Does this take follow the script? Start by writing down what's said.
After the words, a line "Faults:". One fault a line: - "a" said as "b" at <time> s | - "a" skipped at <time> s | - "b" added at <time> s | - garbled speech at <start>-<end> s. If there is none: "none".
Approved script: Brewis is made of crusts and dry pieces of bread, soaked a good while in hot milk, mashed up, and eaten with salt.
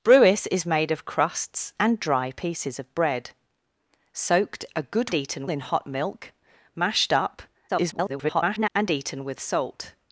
Brewis is made of crusts and dry pieces of bread, soaked a good eaten in hot milk, mashed up, [garbled] and eaten with salt.
Faults:
- "while" said as "eaten" at 5.1 s
- garbled speech at 7.7-8.7 s